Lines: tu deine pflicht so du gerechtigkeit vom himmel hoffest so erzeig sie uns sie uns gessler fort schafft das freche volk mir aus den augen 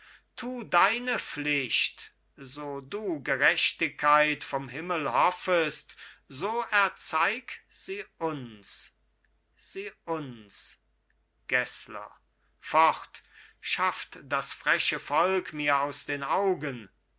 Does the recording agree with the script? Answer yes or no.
yes